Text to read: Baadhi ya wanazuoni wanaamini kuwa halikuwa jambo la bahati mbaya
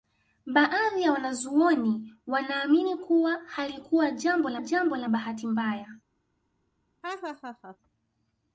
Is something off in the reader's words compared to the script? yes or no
yes